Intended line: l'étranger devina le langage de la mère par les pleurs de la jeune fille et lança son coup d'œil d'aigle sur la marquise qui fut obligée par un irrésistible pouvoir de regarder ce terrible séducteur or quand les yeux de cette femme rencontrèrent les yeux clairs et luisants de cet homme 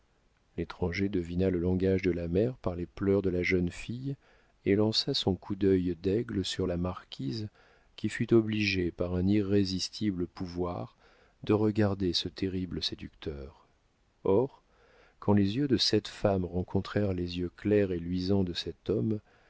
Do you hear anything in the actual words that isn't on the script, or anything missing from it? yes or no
no